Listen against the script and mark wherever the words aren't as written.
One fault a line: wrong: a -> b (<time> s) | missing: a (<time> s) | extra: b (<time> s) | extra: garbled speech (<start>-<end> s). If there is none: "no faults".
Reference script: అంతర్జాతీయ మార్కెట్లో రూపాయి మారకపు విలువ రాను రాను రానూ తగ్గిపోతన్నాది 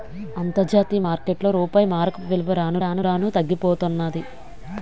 no faults